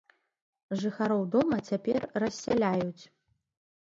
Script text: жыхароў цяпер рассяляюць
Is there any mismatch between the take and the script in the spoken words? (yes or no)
yes